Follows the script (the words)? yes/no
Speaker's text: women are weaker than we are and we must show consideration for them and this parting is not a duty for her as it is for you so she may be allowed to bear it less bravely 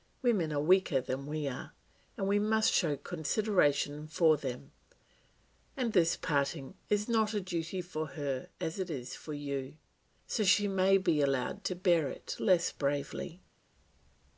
yes